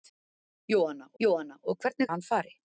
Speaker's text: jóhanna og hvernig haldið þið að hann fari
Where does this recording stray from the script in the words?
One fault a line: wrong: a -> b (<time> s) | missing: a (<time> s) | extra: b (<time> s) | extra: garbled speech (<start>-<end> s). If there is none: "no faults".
extra: jóhanna (1.2 s)
missing: haldið þið (2.1 s)